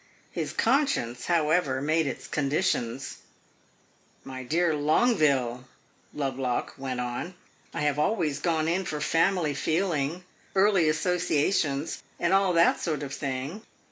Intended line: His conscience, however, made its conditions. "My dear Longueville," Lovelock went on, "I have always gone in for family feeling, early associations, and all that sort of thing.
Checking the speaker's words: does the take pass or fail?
pass